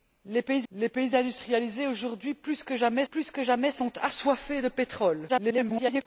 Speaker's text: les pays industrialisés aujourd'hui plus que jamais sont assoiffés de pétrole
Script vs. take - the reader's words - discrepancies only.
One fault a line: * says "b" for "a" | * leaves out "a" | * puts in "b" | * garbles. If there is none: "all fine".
* puts in "les pays"
* puts in "plus que jamais"
* garbles